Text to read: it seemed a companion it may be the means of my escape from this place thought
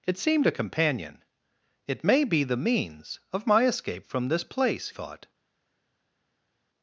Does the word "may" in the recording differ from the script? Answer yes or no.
no